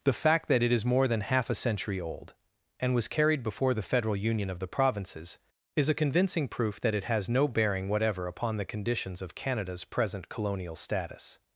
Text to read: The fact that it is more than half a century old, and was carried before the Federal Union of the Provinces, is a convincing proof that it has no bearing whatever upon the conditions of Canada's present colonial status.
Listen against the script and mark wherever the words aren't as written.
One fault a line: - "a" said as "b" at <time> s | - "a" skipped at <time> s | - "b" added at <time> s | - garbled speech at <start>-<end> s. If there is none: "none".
none